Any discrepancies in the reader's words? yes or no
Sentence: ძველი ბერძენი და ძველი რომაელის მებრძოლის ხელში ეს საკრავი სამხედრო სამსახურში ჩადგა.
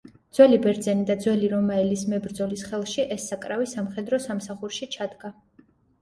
no